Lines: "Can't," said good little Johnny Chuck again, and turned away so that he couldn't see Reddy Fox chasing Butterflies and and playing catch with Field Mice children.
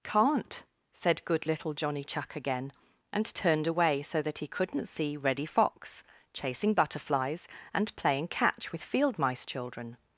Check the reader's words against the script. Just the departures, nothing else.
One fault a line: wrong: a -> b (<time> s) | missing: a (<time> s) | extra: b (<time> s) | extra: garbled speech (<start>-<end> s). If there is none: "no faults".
missing: and (7.9 s)